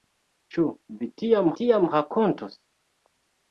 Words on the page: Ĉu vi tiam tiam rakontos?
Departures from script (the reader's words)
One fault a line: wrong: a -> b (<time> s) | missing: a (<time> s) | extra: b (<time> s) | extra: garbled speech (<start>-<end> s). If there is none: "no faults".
no faults